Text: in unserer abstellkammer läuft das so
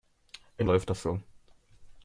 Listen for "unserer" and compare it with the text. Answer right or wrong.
wrong